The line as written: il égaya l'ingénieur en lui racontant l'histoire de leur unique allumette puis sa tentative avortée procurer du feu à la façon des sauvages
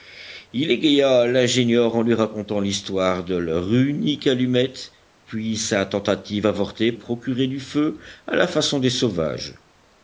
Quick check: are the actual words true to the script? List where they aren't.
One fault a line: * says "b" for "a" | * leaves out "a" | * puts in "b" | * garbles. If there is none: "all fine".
all fine